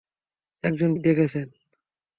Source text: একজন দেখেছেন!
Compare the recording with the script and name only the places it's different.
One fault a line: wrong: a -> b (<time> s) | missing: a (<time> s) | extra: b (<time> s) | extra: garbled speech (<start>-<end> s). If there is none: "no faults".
no faults